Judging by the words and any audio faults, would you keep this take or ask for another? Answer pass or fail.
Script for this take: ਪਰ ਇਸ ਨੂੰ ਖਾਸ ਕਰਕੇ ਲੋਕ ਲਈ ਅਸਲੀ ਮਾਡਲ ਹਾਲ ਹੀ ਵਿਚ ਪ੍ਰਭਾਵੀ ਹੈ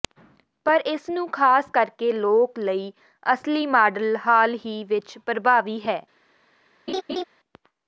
fail